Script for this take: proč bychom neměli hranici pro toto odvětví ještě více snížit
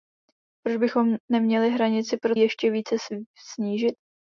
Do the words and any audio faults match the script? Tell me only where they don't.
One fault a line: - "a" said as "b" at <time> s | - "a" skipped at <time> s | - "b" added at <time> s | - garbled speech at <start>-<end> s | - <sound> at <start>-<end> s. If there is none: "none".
- "toto odvětví" skipped at 2.4 s